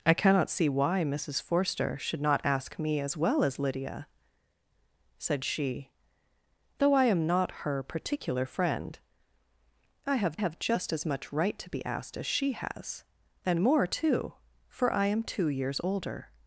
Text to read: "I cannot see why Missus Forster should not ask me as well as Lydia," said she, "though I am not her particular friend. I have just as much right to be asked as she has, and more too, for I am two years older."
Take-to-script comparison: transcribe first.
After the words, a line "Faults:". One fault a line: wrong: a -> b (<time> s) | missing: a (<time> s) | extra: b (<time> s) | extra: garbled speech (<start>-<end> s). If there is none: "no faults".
"I cannot see why Missus Forster should not ask me as well as Lydia," said she, "though I am not her particular friend. I have have just as much right to be asked as she has, and more too, for I am two years older."
Faults:
extra: have (10.3 s)